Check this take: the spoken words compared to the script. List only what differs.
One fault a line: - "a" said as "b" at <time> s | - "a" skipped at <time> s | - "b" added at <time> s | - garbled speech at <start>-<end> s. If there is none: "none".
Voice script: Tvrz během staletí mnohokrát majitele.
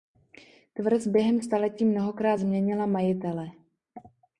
- "změnila" added at 2.3 s